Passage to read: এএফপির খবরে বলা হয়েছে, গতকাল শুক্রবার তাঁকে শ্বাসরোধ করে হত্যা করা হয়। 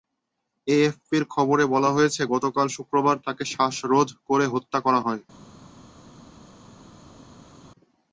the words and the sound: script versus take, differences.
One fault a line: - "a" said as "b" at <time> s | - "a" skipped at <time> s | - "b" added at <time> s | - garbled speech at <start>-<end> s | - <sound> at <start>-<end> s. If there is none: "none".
none